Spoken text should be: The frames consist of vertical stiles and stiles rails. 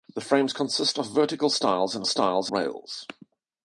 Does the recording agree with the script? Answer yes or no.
yes